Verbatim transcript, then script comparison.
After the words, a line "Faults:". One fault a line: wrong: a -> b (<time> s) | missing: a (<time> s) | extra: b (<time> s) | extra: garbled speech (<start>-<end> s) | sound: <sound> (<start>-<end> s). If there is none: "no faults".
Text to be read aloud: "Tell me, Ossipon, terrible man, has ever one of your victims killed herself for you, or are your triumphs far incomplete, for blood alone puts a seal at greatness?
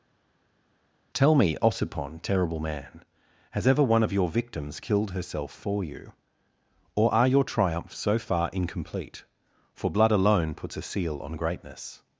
"Tell me, Ossipon, terrible man, has ever one of your victims killed herself for you, or are your triumphs so far incomplete, for blood alone puts a seal on greatness?
Faults:
extra: so (8.0 s)
wrong: at -> on (11.2 s)